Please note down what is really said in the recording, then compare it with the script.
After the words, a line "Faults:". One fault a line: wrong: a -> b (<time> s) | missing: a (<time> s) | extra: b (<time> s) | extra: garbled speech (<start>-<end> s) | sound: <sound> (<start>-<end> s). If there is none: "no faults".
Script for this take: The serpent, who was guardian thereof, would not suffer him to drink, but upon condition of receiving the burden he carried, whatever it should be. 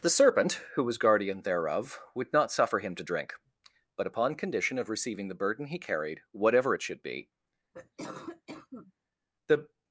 The serpent, who was guardian thereof, would not suffer him to drink, but upon condition of receiving the burden he carried, whatever it should be. The
Faults:
sound: cough (7.7-8.9 s)
extra: The (9.5 s)